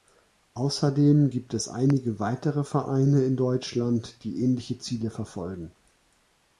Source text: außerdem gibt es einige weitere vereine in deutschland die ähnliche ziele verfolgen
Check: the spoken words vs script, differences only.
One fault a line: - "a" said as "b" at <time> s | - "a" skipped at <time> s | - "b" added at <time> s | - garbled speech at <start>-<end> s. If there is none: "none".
none